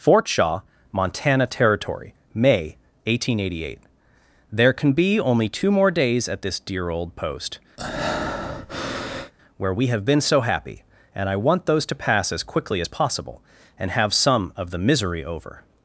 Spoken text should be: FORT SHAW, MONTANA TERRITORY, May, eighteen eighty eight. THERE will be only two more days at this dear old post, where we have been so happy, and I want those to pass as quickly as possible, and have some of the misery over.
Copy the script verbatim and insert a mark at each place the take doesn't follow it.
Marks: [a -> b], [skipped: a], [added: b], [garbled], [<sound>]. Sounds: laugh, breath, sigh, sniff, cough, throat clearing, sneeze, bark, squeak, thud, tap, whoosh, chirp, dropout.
FORT SHAW, MONTANA TERRITORY, May, eighteen eighty eight. THERE [will -> can] be only two more days at this dear old post, [breath] where we have been so happy, and I want those to pass as quickly as possible, and have some of the misery over.